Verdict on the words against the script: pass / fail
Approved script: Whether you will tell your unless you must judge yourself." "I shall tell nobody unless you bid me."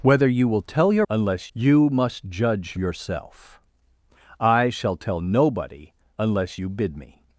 pass